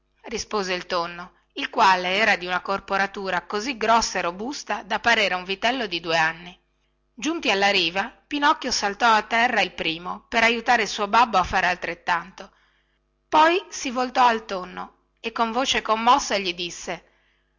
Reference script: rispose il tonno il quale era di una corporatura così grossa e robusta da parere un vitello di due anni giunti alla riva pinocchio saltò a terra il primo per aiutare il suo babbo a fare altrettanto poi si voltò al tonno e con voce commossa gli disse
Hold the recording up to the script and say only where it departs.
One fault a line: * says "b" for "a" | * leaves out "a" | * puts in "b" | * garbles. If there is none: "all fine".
all fine